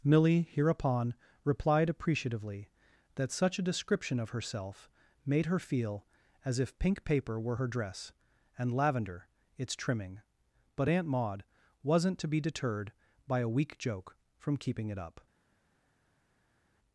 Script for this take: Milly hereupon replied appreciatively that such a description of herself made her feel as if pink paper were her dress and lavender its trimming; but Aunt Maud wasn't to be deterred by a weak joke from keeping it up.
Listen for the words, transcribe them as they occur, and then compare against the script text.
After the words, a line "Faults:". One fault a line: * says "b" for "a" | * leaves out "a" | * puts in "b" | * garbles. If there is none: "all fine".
Milly hereupon replied appreciatively that such a description of herself made her feel as if pink paper were her dress and lavender its trimming; but Aunt Maud wasn't to be deterred by a weak joke from keeping it up.
Faults:
all fine